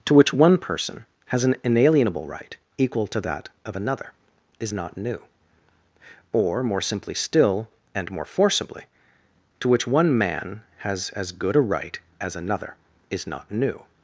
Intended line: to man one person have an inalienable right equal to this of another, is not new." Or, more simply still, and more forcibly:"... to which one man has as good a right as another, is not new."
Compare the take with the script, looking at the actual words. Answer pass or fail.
fail